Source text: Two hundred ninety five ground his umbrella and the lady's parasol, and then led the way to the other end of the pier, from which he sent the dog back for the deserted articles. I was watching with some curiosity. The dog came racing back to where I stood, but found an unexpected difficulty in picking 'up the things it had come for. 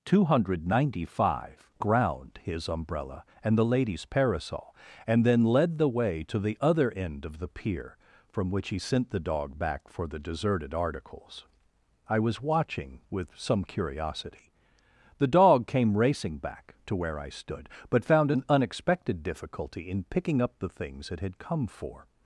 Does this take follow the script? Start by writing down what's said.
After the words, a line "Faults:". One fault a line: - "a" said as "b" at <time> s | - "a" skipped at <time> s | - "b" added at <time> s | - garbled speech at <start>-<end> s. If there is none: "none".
Two hundred ninety five ground his umbrella and the lady's parasol, and then led the way to the other end of the pier, from which he sent the dog back for the deserted articles. I was watching with some curiosity. The dog came racing back to where I stood, but found an unexpected difficulty in picking 'up the things it had come for.
Faults:
none